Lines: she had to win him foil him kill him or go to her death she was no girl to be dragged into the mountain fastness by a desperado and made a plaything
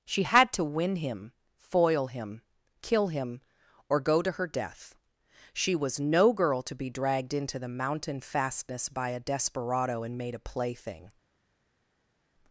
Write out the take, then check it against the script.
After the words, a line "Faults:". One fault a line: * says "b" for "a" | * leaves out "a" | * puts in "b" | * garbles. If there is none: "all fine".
she had to win him foil him kill him or go to her death she was no girl to be dragged into the mountain fastness by a desperado and made a plaything
Faults:
all fine